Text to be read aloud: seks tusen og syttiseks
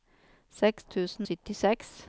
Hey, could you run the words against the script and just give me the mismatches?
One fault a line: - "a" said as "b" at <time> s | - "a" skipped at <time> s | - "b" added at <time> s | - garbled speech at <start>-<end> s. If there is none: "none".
- "og" skipped at 1.3 s